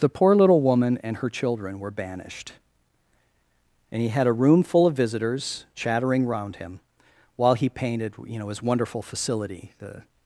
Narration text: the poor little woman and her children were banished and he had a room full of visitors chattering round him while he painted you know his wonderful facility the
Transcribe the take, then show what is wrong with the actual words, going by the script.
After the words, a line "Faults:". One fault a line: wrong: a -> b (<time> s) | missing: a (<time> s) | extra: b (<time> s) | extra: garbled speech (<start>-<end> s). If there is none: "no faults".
the poor little woman and her children were banished and he had a room full of visitors chattering round him while he painted you know his wonderful facility the
Faults:
no faults